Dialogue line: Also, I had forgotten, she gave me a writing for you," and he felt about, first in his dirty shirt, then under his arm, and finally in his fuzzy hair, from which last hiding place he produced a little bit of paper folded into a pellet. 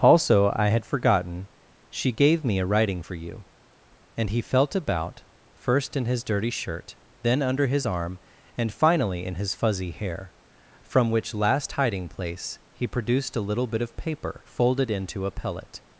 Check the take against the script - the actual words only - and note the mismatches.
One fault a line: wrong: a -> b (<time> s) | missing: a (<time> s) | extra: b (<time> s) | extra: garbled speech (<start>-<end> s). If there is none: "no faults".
no faults